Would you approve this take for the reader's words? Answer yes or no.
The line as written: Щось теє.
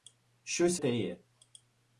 yes